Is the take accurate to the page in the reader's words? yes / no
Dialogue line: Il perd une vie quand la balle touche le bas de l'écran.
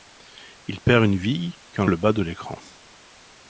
no